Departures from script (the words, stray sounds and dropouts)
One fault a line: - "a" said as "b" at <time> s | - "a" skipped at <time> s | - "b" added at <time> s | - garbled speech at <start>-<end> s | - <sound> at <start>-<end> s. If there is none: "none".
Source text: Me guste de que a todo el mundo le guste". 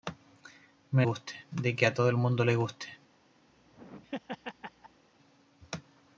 - laugh at 3.5-5.0 s